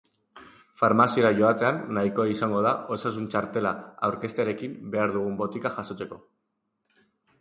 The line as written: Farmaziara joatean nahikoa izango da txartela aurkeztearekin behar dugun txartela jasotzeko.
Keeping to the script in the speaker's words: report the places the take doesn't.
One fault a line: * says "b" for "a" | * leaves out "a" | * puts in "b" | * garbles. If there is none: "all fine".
* puts in "osasun"
* says "botika" for "txartela"